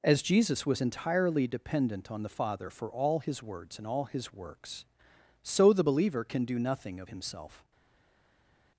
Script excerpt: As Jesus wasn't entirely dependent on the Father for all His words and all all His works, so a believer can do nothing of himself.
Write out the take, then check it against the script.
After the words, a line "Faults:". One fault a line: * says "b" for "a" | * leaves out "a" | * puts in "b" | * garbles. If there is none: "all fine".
As Jesus was entirely dependent on the Father for all His words and all His works, so the believer can do nothing of himself.
Faults:
* says "was" for "wasn't"
* leaves out "all"
* says "the" for "a"